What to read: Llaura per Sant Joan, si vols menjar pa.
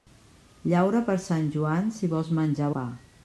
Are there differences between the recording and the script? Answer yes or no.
no